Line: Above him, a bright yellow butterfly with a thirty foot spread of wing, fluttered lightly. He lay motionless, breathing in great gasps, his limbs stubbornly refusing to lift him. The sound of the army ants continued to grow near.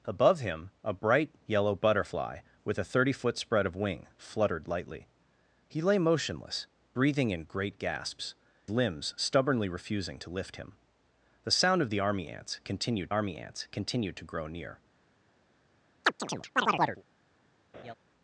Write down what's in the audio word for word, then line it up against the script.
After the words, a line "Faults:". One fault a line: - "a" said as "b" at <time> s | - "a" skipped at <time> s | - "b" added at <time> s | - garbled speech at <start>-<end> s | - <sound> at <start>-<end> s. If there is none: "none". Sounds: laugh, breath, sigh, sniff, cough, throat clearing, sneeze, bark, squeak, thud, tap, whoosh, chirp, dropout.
Above him, a bright yellow butterfly with a thirty foot spread of wing, fluttered lightly. He lay motionless, breathing in great gasps, limbs stubbornly refusing to lift him. The sound of the army ants continued army ants continued to grow near.
Faults:
- "his" skipped at 8.3 s
- "army ants continued" added at 13.1 s
- chirp at 16.0-17.0 s
- laugh at 17.7-17.9 s